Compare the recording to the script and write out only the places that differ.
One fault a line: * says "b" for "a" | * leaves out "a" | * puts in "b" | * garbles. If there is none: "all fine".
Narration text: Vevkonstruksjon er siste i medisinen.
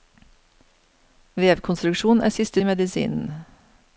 all fine